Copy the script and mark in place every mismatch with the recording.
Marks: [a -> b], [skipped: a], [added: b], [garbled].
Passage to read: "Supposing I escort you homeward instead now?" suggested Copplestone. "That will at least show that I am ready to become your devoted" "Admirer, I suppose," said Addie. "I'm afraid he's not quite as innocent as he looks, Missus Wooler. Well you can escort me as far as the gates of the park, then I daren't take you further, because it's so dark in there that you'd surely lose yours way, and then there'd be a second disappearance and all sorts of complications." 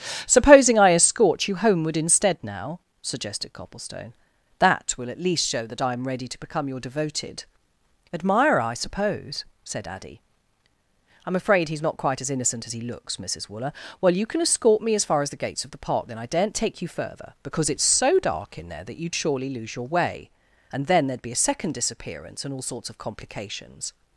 "Supposing I escort you homeward instead now?" suggested Copplestone. "That will at least show that I am ready to become your devoted" "Admirer, I suppose," said Addie. "I'm afraid he's not quite as innocent as he looks, Missus Wooler. Well you can escort me as far as the gates of the park, then I daren't take you further, because it's so dark in there that you'd surely lose [yours -> your] way, and then there'd be a second disappearance and all sorts of complications."